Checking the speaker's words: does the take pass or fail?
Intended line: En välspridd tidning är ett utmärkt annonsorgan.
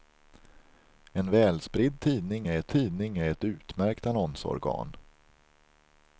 fail